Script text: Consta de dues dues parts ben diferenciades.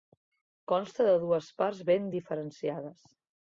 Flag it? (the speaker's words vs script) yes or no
yes